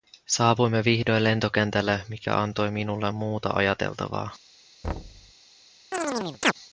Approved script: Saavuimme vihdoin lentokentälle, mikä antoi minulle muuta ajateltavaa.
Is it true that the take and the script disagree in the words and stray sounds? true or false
true